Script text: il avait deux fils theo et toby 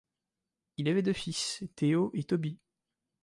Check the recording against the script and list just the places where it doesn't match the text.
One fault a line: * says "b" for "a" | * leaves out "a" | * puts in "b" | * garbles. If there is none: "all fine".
all fine